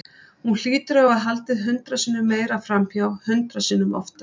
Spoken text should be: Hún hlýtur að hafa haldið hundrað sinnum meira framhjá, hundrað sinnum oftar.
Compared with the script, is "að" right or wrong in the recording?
right